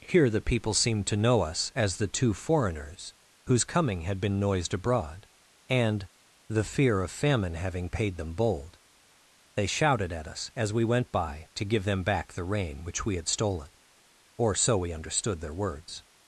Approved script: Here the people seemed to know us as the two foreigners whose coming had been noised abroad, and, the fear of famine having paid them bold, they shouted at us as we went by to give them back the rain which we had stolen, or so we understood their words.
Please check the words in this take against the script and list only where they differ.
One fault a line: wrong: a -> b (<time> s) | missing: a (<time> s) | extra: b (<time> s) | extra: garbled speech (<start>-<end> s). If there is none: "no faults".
no faults